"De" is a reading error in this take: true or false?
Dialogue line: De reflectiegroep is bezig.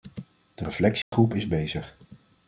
false